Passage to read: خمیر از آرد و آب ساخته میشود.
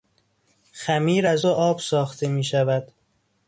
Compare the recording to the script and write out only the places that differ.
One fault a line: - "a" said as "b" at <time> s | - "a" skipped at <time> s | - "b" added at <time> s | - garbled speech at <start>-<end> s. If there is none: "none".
- "آرد" skipped at 1.5 s